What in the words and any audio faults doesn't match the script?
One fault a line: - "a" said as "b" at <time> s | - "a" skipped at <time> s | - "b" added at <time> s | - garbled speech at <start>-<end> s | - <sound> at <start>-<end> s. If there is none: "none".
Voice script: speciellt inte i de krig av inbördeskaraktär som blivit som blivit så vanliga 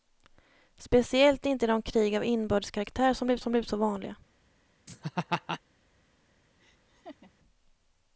- laugh at 4.9-5.6 s
- laugh at 6.6-7.3 s